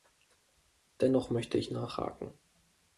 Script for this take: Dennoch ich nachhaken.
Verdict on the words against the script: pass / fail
fail